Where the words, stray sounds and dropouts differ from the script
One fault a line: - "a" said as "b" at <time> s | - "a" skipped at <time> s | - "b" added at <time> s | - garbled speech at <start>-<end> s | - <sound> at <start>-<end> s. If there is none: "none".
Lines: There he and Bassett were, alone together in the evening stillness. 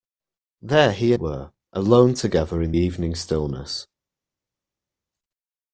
- "and Bassett" skipped at 1.1 s
- "the" skipped at 2.7 s